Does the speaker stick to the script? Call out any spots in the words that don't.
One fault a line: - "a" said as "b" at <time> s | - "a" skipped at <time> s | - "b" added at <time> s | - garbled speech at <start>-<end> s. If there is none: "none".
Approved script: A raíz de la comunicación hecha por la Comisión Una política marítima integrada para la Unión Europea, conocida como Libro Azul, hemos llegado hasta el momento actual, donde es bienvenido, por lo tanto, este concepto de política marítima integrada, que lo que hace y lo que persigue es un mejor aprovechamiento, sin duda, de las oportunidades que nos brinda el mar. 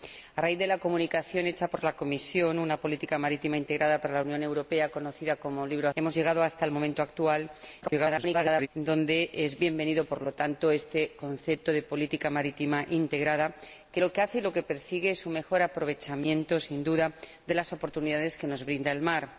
- "Azul" skipped at 5.9 s
- garbled speech at 7.8-8.7 s